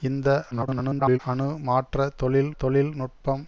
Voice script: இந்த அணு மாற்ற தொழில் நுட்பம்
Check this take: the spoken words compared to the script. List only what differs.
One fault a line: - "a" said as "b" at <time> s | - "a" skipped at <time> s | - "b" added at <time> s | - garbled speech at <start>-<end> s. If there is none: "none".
- garbled speech at 0.5-1.2 s
- "தொழில்" added at 2.6 s